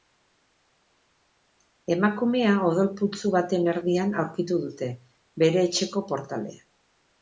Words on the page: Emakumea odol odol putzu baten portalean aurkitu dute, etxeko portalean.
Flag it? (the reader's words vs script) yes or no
yes